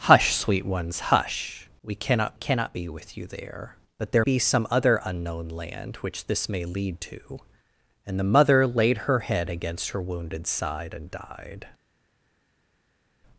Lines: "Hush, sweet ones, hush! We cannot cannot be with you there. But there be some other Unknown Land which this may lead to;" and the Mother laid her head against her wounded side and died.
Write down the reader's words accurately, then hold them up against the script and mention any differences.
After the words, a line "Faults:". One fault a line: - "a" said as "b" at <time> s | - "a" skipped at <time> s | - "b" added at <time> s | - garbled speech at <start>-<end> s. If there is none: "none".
"Hush, sweet ones, hush! We cannot cannot be with you there. But there be some other Unknown Land which this may lead to;" and the Mother laid her head against her wounded side and died.
Faults:
none